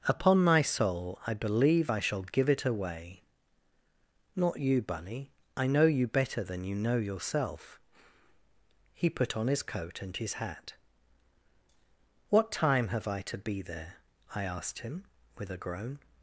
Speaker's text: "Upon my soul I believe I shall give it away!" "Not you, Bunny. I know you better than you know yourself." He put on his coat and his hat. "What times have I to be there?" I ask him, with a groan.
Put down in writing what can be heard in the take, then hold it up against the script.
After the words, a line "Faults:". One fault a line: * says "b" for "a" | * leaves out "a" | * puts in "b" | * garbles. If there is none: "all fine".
"Upon my soul I believe I shall give it away!" "Not you, Bunny. I know you better than you know yourself." He put on his coat and his hat. "What time have I to be there?" I asked him, with a groan.
Faults:
* says "time" for "times"
* says "asked" for "ask"